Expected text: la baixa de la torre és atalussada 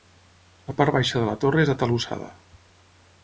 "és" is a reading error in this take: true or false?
false